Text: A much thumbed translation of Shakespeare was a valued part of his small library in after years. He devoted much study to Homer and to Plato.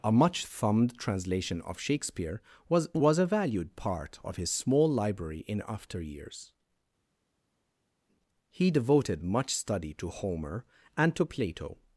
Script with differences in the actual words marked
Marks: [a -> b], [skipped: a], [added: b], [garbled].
A much thumbed translation of Shakespeare was [added: was] a valued part of his small library in after years. He devoted much study to Homer and to Plato.